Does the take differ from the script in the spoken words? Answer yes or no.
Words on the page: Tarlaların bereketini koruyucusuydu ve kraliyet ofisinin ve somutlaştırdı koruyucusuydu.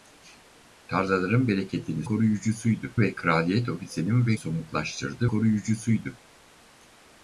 no